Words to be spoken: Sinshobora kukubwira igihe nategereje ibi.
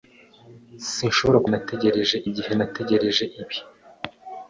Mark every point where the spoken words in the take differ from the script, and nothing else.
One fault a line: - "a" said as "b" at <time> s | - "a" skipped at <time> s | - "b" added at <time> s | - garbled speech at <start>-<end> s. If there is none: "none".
- "kukubwira" said as "nategereje" at 1.5 s